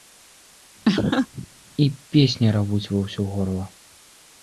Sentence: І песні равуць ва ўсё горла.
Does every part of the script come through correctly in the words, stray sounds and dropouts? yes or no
no